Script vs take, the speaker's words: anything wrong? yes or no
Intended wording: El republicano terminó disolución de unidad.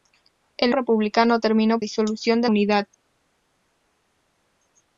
no